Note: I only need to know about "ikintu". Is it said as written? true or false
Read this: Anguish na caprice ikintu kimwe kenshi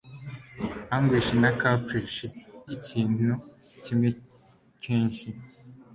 true